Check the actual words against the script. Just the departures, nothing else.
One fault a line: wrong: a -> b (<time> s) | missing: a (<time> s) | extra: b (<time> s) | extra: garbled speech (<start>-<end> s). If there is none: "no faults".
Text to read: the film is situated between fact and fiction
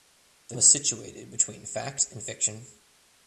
missing: film (0.6 s)